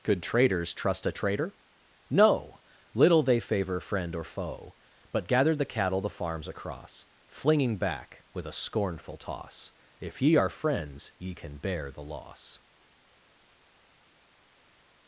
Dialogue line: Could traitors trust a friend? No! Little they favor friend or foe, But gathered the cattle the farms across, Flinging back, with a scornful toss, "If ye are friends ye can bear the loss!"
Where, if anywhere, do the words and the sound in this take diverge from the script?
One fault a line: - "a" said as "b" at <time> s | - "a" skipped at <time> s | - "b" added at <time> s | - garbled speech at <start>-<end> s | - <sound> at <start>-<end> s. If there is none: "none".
- "friend" said as "traitor" at 1.1 s